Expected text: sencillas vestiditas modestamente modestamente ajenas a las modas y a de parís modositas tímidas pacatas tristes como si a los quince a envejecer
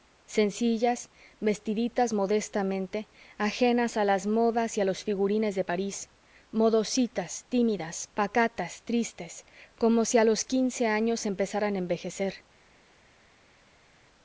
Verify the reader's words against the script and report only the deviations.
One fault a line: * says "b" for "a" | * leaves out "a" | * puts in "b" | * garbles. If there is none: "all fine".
* leaves out "modestamente"
* puts in "los figurines"
* puts in "años empezaran"